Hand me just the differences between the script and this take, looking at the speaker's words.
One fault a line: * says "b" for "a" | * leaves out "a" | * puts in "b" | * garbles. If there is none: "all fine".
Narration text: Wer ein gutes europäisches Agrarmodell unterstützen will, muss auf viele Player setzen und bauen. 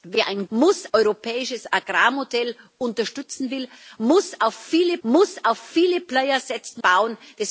* says "muss" for "gutes"
* puts in "muss auf viele"
* leaves out "und"